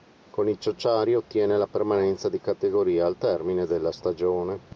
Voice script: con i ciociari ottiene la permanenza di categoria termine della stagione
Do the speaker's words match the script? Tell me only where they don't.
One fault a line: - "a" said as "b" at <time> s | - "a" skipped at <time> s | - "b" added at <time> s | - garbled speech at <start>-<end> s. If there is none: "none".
- "al" added at 3.0 s